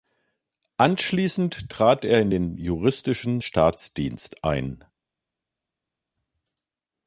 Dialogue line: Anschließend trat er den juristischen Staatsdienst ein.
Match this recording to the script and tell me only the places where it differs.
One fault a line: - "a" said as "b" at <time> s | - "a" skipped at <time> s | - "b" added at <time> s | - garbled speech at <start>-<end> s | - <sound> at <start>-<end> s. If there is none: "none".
- "in" added at 2.2 s